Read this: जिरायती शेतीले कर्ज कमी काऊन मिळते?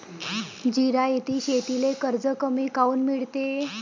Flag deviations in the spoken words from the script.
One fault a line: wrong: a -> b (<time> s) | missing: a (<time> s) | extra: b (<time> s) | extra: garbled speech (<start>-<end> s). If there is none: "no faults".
no faults